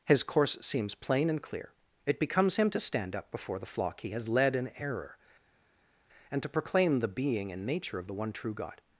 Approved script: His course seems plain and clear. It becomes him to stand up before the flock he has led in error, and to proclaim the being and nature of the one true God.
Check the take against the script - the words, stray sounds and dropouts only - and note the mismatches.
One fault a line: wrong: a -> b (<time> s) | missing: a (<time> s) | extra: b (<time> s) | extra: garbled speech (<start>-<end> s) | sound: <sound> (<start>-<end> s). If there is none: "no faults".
no faults